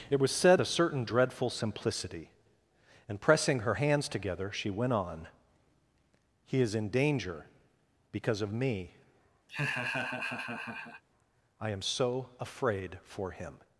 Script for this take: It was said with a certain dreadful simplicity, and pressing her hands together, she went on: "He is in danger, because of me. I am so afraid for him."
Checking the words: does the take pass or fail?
fail